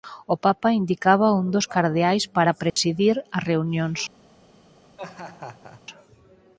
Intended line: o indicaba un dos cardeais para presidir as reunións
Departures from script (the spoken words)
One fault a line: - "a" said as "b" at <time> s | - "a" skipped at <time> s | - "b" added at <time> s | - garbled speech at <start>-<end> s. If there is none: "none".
- "papa" added at 0.5 s